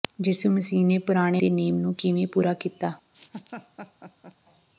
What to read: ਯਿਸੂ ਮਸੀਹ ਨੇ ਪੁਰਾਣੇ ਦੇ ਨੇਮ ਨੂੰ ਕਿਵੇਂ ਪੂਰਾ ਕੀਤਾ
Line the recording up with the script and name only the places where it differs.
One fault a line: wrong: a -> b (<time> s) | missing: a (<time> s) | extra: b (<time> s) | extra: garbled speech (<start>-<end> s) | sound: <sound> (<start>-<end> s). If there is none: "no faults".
sound: laugh (3.1-4.4 s)